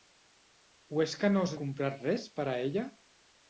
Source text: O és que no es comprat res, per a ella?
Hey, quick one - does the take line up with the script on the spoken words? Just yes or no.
yes